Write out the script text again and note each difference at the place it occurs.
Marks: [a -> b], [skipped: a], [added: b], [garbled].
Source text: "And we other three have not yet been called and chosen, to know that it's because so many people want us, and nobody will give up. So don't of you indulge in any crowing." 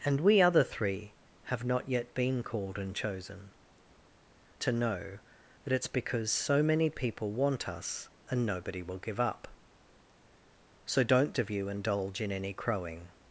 "And we other three have not yet been called and chosen, to know that it's because so many people want us, and nobody will give up. So don't of you indulge in any crowing."